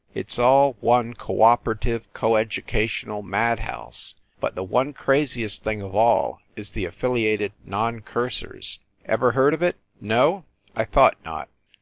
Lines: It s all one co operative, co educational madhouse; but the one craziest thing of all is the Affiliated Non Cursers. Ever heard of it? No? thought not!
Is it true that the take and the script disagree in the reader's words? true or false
true